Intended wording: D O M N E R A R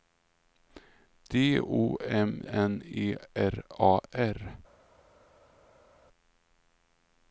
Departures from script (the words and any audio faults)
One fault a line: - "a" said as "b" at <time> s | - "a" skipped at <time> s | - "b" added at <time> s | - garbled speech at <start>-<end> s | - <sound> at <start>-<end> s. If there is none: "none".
none